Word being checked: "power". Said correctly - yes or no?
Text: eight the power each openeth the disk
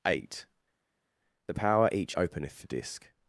yes